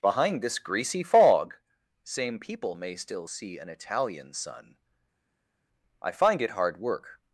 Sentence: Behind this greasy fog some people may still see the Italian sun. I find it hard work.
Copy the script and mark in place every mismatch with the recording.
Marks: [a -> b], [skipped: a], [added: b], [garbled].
Behind this greasy fog [some -> same] people may still see [the -> an] Italian sun. I find it hard work.